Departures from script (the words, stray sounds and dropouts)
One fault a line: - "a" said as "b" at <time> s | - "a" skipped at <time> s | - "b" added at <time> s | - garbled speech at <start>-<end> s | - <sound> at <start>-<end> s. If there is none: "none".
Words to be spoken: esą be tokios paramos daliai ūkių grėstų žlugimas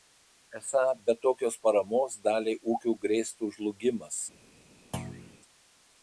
- thud at 4.9-5.4 s